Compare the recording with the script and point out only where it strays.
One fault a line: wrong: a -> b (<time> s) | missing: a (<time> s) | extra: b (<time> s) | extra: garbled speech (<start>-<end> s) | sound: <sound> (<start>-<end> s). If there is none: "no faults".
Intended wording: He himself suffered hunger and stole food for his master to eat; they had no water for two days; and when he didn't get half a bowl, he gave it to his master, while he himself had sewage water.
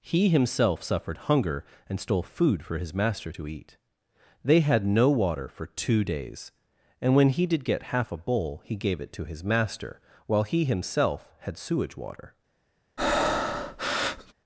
wrong: didn't -> did (7.5 s)
sound: breath (13.0-14.3 s)